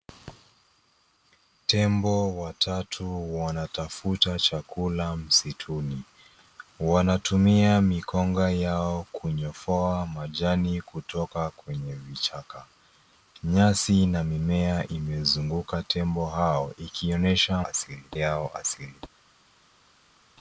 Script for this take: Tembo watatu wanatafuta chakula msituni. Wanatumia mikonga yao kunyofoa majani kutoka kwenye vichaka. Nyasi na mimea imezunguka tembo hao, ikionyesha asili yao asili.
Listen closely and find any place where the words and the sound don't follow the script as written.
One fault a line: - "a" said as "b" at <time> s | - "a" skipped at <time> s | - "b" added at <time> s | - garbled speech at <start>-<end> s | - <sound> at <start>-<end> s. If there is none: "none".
none